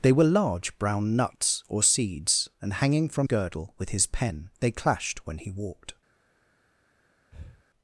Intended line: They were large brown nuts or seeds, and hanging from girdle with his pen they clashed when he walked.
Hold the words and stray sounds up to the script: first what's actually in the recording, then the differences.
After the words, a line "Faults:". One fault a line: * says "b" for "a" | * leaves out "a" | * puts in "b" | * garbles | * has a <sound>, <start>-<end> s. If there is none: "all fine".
They were large brown nuts or seeds, and hanging from girdle with his pen they clashed when he walked.
Faults:
* has a breath, 7.3-7.6 s